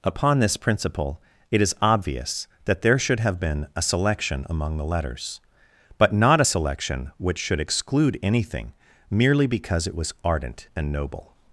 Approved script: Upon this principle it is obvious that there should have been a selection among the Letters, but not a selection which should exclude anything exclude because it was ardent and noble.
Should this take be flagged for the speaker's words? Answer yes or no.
yes